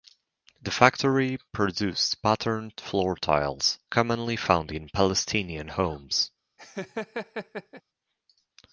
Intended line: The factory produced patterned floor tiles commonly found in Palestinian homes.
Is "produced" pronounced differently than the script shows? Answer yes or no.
no